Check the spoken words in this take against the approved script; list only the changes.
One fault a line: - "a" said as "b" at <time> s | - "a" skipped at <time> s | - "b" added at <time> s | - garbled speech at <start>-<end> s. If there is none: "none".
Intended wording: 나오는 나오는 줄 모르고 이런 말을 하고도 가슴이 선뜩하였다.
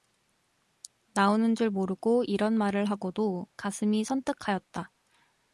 - "나오는" skipped at 1.5 s